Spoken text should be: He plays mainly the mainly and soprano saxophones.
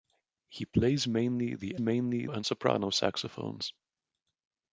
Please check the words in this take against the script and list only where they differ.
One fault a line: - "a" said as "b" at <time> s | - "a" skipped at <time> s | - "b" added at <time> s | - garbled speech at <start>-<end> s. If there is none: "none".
none